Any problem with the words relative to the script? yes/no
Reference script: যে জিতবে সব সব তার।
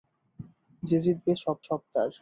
no